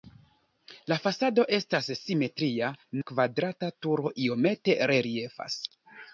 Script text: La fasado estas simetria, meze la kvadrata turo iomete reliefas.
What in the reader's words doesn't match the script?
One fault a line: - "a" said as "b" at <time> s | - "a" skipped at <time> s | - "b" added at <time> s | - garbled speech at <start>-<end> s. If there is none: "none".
- "meze" skipped at 2.7 s